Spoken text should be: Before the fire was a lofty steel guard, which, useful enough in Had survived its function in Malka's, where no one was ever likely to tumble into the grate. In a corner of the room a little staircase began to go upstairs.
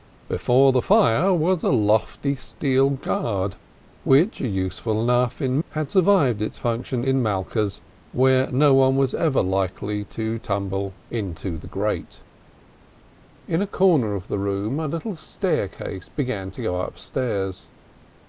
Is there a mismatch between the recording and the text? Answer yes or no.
no